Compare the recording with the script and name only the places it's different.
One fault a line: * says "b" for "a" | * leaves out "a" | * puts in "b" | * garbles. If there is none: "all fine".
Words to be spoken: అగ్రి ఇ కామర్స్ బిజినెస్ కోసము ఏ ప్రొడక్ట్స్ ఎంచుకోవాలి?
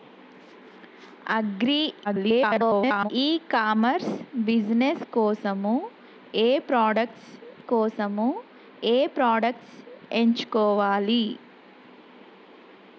* garbles
* puts in "కోసము ఏ ప్రొడక్ట్స్"